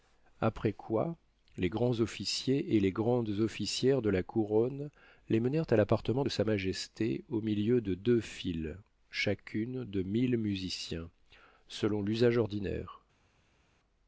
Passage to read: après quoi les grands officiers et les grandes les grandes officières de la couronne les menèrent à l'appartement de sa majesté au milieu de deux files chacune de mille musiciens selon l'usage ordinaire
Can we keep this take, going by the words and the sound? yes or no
no